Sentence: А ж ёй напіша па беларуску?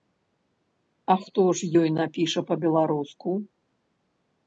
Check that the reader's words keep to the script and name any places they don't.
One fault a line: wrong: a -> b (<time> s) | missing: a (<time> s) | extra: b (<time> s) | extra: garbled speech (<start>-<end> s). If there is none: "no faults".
extra: хто (1.3 s)